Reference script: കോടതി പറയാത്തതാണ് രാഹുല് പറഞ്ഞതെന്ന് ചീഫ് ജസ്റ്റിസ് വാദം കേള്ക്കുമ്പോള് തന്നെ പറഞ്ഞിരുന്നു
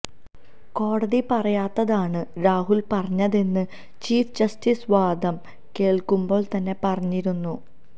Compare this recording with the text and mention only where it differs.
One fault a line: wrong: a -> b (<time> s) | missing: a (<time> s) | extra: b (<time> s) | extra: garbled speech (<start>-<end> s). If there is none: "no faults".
no faults